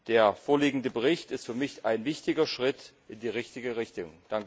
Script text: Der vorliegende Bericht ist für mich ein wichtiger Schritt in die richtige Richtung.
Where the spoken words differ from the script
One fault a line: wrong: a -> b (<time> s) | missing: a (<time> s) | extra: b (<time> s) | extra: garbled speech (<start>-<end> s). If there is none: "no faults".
no faults